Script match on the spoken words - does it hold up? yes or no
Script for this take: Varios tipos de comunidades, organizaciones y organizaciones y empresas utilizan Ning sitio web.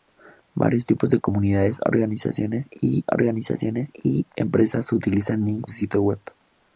yes